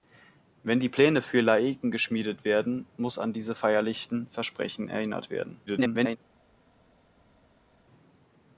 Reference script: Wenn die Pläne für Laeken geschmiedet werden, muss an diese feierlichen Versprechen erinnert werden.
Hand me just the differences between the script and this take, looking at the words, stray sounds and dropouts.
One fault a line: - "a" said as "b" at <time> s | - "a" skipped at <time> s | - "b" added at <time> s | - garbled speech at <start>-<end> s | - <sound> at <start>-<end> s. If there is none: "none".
- garbled speech at 5.7-6.2 s